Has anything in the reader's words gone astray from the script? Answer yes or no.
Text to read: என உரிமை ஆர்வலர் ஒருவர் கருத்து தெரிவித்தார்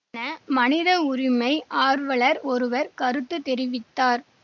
yes